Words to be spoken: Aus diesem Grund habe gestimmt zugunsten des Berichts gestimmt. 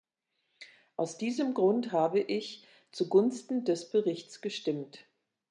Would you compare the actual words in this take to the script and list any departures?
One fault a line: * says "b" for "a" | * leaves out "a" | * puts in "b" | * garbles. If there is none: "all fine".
* says "ich" for "gestimmt"